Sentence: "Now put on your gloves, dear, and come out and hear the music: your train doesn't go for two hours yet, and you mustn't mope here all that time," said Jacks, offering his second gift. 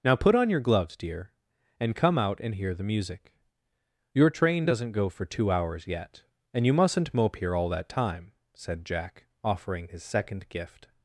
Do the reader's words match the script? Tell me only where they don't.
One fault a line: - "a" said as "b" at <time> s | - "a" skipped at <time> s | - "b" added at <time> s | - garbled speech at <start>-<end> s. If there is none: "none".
- "Jacks" said as "Jack" at 8.8 s